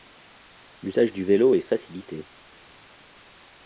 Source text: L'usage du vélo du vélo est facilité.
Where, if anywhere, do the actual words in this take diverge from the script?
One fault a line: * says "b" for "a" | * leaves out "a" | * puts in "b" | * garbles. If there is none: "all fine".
* leaves out "du vélo"